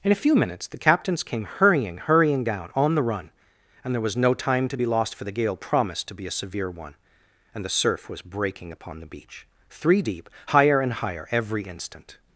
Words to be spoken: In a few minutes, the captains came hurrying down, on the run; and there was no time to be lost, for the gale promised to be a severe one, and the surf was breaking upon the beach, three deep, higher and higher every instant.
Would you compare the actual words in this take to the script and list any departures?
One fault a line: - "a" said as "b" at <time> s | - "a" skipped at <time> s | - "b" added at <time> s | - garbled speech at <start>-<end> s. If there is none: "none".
- "hurrying" added at 2.0 s